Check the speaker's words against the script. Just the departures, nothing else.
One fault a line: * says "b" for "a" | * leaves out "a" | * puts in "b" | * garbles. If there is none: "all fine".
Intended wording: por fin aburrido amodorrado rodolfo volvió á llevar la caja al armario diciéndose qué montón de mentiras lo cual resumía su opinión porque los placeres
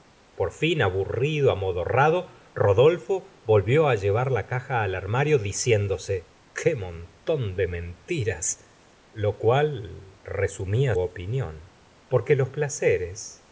* leaves out "su"